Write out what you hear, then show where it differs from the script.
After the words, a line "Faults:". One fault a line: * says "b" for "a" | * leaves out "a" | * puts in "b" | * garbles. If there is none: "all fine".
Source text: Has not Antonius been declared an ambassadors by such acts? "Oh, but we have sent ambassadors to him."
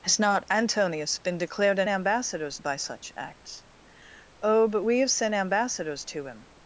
Has not Antonius been declared an ambassadors by such acts? "Oh, but we have sent ambassadors to him."
Faults:
all fine